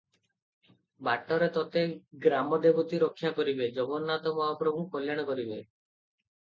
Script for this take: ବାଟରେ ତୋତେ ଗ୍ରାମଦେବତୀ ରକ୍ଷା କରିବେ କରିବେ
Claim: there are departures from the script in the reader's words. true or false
true